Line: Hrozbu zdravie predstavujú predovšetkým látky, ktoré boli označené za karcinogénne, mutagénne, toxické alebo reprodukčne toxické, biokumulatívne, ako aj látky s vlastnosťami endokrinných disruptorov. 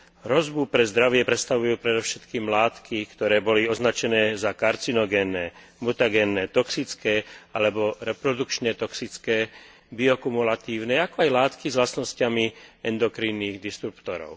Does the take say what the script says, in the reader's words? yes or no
no